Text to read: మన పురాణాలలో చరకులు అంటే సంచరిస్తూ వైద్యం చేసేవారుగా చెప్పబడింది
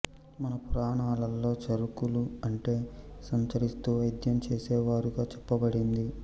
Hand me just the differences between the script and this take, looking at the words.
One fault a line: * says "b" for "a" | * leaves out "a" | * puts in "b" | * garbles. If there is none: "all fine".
all fine